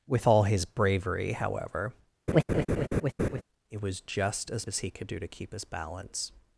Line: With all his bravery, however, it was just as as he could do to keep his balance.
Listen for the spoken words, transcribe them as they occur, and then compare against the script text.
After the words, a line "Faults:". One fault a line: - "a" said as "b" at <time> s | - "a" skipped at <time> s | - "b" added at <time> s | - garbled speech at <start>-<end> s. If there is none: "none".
With all his bravery, however, it was just as as he could do to keep his balance.
Faults:
none